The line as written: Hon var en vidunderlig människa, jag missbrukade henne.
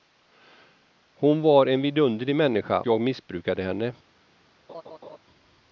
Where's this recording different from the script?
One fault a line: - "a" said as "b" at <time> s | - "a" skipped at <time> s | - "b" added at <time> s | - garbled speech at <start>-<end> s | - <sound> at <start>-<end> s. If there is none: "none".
- laugh at 4.7-5.2 s